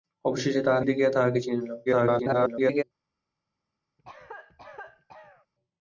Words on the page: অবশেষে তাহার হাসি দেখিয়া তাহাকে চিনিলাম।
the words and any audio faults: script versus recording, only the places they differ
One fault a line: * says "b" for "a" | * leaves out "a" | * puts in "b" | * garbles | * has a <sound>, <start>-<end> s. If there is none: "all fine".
* leaves out "হাসি"
* garbles
* has a cough, 4.0-5.5 s